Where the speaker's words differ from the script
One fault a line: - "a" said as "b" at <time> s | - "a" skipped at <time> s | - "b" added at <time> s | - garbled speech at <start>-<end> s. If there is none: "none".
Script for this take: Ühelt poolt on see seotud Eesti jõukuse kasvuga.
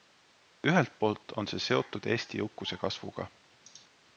none